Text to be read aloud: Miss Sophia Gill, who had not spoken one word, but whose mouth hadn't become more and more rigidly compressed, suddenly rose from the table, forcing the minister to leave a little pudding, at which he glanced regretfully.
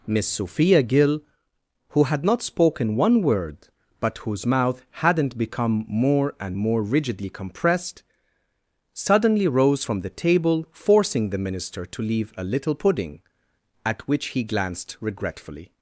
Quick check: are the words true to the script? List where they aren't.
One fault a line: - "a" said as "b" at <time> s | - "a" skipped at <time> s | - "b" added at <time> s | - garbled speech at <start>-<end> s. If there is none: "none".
none